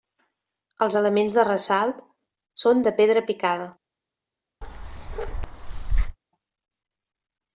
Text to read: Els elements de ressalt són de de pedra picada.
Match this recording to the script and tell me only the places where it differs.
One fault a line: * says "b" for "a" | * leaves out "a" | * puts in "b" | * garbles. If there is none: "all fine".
* leaves out "de"